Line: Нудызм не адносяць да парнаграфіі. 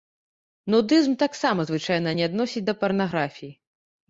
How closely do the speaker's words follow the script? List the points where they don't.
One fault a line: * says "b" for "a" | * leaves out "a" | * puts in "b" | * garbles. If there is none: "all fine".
* puts in "таксама звычайна"